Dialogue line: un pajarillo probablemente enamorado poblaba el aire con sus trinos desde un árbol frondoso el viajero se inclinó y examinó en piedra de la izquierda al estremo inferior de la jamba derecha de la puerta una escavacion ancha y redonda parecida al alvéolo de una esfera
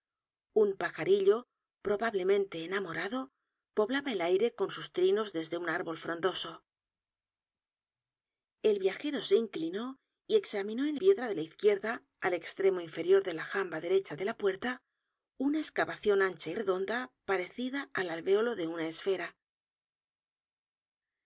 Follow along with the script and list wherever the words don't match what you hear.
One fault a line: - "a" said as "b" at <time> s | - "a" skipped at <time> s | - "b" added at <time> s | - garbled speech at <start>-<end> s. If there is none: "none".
none